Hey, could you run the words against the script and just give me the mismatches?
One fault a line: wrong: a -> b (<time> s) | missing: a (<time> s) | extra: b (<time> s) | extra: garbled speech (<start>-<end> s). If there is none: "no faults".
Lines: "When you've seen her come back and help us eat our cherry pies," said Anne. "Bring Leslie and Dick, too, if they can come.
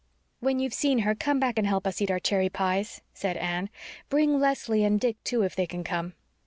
no faults